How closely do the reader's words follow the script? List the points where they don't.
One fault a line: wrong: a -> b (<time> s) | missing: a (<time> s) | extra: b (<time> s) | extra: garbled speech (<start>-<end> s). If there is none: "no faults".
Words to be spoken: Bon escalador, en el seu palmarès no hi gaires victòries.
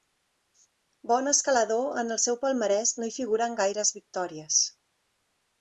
extra: figuren (3.2 s)